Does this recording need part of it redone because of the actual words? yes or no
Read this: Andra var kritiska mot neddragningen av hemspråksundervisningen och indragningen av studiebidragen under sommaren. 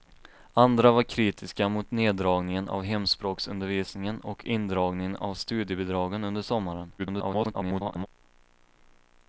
yes